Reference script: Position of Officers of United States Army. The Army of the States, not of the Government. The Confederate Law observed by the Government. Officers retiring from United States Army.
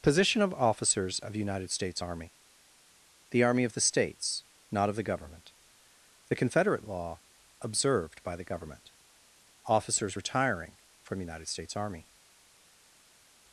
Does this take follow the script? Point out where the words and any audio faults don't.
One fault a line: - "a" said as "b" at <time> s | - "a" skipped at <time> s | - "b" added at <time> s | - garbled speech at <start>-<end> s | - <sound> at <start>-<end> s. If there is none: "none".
none